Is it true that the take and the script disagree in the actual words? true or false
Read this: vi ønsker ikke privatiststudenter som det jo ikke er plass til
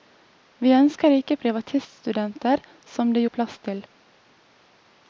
true